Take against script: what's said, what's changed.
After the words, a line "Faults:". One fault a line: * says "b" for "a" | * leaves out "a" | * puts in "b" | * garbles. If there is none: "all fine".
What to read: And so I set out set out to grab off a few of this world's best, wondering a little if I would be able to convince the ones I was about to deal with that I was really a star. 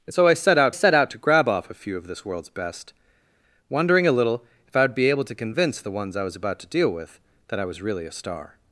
And so I set out set out to grab off a few of this world's best, wondering a little if I would be able to convince the ones I was about to deal with that I was really a star.
Faults:
all fine